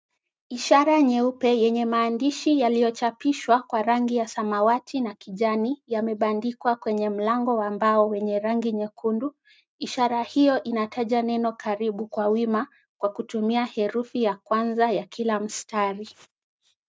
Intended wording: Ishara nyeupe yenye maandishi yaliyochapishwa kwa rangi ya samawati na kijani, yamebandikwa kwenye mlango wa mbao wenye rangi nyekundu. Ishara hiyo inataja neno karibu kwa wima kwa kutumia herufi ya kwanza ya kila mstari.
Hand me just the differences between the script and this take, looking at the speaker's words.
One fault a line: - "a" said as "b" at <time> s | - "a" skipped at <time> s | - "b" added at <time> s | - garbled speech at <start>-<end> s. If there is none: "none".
none